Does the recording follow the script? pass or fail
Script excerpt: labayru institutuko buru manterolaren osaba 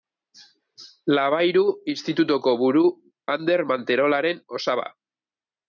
fail